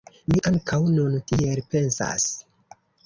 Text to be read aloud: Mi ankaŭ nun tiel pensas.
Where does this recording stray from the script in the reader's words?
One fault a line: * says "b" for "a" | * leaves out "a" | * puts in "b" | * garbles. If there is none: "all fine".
all fine